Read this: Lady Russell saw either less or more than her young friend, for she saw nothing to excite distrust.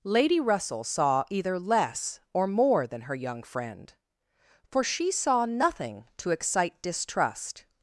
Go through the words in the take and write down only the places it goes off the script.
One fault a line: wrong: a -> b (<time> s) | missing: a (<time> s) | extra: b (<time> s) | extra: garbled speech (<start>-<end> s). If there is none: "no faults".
no faults